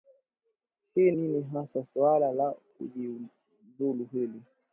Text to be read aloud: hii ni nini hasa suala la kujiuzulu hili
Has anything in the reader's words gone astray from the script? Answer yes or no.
yes